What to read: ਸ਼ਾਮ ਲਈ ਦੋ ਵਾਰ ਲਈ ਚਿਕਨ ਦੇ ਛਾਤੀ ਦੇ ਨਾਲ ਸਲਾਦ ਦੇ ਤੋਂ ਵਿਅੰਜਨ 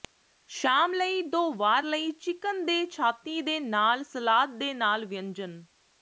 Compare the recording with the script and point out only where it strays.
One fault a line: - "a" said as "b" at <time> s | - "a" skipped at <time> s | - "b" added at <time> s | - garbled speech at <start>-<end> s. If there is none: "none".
- "ਤੋਂ" said as "ਨਾਲ" at 4.7 s